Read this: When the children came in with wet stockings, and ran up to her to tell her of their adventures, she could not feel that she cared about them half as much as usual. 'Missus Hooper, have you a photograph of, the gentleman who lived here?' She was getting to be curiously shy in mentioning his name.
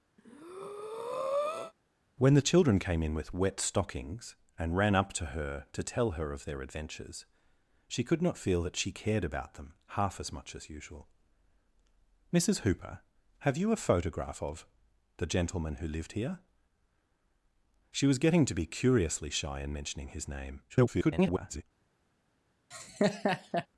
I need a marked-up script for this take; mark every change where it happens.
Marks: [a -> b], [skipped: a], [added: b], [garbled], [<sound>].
[breath] When the children came in with wet stockings, and ran up to her to tell her of their adventures, she could not feel that she cared about them half as much as usual. 'Missus Hooper, have you a photograph of, the gentleman who lived here?' She was getting to be curiously shy in mentioning his name. [garbled] [laugh]